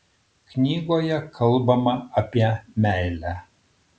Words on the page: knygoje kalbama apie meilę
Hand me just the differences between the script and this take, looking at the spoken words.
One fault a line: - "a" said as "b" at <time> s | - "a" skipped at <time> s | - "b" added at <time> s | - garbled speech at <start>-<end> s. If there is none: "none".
none